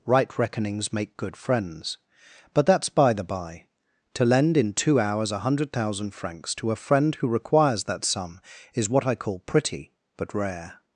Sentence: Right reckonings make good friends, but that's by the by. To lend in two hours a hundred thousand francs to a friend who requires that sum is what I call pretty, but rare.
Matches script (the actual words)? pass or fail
pass